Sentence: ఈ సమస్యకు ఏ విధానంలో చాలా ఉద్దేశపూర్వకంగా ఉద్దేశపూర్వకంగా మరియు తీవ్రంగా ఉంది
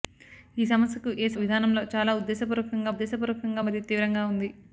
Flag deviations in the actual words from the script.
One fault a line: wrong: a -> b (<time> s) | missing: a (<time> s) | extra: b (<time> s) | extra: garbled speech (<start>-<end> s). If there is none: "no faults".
no faults